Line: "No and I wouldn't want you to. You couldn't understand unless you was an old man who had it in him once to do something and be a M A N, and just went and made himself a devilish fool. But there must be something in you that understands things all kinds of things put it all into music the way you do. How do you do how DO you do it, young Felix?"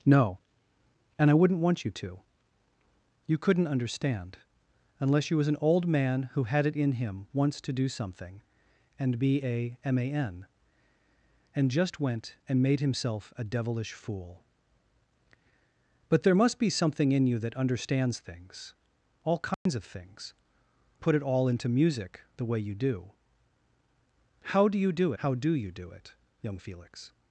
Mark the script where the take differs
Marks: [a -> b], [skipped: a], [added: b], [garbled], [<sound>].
"No and I wouldn't want you to. You couldn't understand unless you was an old man who had it in him once to do something and be a M A N, and just went and made himself a devilish fool. But there must be something in you that understands things all kinds [dropout] of things put it all into music the way you do. How do you do how DO you do it, young Felix?"